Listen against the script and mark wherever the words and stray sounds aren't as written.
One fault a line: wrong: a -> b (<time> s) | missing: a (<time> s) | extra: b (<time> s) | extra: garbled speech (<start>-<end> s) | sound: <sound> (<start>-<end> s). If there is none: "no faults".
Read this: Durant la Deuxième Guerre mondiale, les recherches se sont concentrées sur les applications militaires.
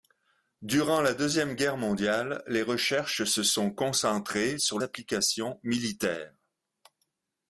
missing: les (4.8 s)